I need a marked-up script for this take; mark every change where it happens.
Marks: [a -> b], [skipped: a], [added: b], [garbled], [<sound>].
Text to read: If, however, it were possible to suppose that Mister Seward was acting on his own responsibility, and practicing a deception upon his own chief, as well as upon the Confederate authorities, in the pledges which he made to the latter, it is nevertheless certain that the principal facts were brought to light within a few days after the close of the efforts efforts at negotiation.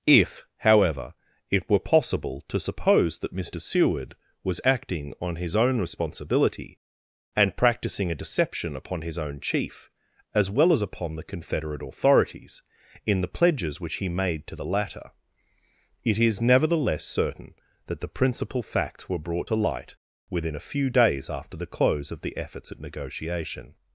If, however, it were possible to suppose that Mister Seward was acting on his own responsibility, and practicing a deception upon his own chief, as well as upon the Confederate authorities, in the pledges which he made to the latter, it is nevertheless certain that the principal facts were brought to light within a few days after the close of the efforts [skipped: efforts] at negotiation.